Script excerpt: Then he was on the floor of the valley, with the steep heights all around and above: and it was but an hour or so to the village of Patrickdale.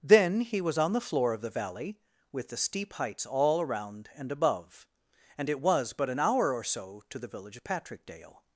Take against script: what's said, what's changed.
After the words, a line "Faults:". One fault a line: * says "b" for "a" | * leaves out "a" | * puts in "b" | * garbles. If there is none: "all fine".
Then he was on the floor of the valley, with the steep heights all around and above: and it was but an hour or so to the village of Patrickdale.
Faults:
all fine